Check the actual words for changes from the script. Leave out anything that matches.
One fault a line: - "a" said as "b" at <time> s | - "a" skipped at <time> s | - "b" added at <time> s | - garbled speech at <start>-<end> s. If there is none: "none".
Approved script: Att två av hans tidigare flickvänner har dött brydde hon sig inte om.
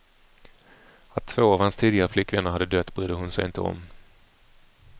- "har" said as "hade" at 2.5 s